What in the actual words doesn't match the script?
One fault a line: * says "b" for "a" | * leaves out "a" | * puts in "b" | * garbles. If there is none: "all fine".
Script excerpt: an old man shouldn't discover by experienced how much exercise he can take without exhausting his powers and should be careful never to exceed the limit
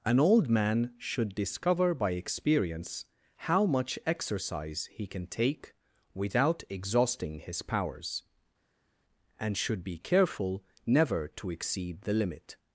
* says "should" for "shouldn't"
* says "experience" for "experienced"